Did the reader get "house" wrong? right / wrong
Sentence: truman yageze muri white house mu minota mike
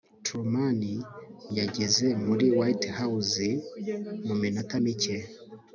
right